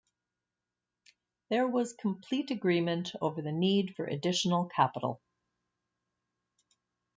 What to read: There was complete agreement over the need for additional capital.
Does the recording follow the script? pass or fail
pass